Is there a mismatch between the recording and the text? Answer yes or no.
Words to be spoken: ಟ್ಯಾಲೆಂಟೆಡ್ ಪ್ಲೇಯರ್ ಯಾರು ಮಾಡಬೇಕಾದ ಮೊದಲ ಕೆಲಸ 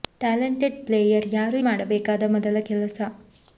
no